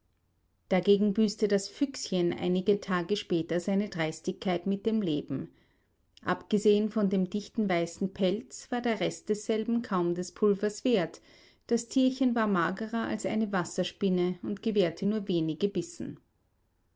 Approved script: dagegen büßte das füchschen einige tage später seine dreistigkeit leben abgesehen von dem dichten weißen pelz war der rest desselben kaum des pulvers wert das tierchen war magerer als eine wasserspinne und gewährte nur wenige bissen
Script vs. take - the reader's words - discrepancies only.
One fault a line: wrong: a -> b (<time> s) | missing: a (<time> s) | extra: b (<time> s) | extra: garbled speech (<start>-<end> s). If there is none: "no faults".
extra: mit dem (4.7 s)